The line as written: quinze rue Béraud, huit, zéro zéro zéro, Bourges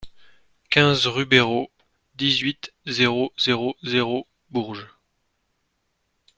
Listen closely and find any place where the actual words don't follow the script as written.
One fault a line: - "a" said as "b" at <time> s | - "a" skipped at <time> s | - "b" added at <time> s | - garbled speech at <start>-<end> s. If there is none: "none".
- "dix" added at 2.1 s